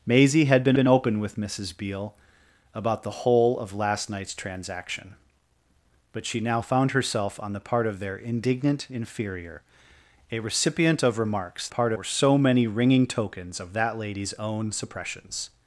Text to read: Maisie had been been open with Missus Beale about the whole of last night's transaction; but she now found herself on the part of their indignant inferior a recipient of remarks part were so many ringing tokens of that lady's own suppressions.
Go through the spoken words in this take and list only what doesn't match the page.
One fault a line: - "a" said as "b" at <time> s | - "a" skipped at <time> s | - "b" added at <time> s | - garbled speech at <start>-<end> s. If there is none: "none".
none